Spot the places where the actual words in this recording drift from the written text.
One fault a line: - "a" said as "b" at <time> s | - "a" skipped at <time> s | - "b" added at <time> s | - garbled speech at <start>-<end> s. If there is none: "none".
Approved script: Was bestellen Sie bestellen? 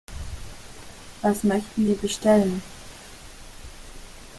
- "bestellen" said as "möchten" at 1.4 s